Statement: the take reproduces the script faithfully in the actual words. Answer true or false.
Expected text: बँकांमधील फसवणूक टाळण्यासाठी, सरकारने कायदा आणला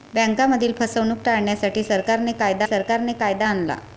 false